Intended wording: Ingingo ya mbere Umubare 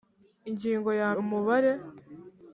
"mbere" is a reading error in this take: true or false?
true